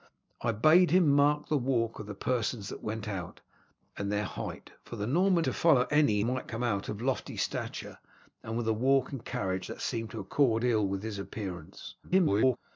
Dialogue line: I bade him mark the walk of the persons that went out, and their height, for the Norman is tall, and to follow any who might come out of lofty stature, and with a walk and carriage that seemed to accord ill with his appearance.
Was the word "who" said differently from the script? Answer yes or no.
yes